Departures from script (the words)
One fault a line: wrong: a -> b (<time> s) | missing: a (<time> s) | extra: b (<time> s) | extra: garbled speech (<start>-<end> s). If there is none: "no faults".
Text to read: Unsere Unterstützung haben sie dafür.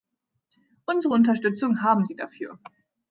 no faults